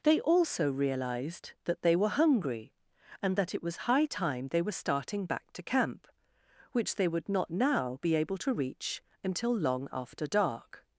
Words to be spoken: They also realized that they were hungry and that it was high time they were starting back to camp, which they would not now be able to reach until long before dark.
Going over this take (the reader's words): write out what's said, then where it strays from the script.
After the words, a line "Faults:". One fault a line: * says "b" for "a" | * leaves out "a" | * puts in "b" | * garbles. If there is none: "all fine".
They also realized that they were hungry and that it was high time they were starting back to camp, which they would not now be able to reach until long after dark.
Faults:
* says "after" for "before"